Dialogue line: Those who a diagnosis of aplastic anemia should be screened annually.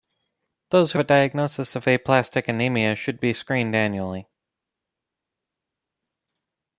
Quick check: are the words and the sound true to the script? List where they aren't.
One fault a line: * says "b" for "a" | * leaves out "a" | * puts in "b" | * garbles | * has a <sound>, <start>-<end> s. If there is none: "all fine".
all fine